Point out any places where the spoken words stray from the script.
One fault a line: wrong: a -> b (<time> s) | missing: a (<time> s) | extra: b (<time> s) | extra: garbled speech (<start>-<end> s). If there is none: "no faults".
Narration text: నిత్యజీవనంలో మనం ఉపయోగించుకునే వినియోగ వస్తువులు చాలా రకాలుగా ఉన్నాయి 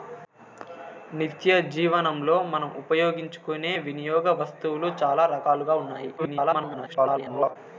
extra: garbled speech (6.2-7.6 s)